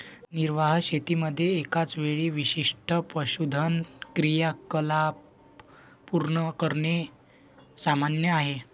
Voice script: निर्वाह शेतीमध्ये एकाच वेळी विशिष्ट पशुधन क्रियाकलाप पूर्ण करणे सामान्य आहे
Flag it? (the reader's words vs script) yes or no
no